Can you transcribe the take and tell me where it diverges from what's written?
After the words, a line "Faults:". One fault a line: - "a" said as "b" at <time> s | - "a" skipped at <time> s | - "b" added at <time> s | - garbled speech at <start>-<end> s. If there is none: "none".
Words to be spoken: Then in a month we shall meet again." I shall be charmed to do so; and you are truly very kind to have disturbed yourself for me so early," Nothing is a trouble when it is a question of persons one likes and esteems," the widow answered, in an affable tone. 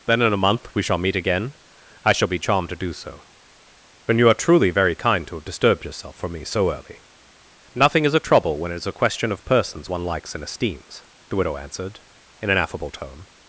Then in a month we shall meet again." I shall be charmed to do so; and you are truly very kind to have disturbed yourself for me so early," Nothing is a trouble when it is a question of persons one likes and esteems," the widow answered, in an affable tone.
Faults:
none